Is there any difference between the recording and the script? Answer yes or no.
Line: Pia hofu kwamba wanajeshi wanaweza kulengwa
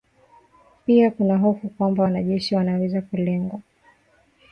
yes